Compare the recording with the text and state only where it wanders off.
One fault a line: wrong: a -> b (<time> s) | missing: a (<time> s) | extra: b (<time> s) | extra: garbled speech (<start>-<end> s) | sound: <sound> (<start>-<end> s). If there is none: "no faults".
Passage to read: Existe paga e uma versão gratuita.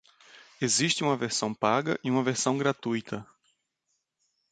extra: uma versão (1.0 s)